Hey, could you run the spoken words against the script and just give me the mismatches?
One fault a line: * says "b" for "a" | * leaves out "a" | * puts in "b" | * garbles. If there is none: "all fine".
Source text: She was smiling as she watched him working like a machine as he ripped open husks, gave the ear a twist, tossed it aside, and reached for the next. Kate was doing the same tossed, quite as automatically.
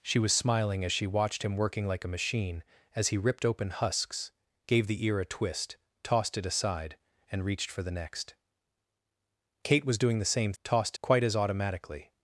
all fine